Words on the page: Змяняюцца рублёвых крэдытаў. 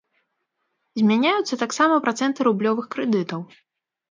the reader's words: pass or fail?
fail